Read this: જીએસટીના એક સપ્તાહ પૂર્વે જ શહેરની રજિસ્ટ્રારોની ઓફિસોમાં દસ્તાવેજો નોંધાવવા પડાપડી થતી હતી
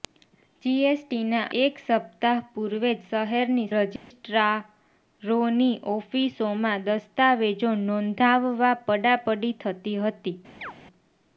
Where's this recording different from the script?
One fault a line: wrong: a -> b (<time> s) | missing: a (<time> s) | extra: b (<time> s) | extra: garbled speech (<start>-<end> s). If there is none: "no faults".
no faults